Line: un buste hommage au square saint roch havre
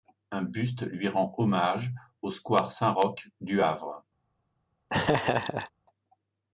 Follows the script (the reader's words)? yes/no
no